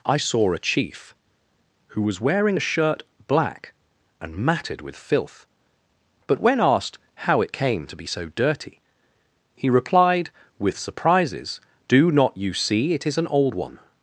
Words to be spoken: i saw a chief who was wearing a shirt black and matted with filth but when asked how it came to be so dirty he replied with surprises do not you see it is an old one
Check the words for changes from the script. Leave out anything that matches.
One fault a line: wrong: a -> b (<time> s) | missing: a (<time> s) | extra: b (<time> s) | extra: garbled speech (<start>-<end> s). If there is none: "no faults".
no faults